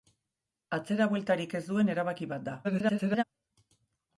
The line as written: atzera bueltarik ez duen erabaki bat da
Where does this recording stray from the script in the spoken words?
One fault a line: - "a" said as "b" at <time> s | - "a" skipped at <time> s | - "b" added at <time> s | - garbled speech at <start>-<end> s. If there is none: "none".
- garbled speech at 2.6-3.2 s